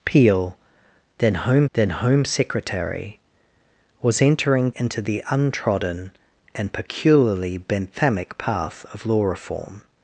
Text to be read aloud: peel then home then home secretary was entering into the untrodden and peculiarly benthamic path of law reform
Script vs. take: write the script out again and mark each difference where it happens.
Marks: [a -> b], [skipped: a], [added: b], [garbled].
peel then home then home secretary was entering into the untrodden and peculiarly benthamic path of law reform